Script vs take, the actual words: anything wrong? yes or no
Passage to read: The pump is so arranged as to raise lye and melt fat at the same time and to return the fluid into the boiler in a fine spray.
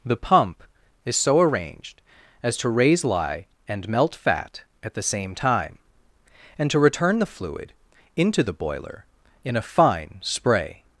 no